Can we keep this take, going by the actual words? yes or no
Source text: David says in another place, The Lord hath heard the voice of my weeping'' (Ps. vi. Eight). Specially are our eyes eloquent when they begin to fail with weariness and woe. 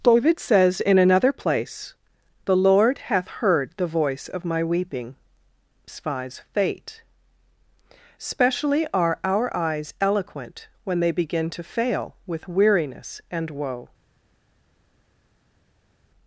no